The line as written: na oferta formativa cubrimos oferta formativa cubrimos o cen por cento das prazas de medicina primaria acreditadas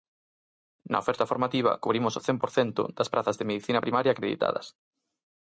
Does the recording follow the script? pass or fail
fail